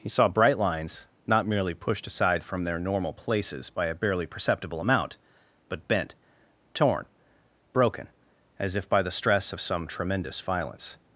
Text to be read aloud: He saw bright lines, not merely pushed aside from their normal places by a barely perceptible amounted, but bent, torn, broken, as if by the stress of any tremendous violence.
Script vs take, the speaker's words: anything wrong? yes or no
yes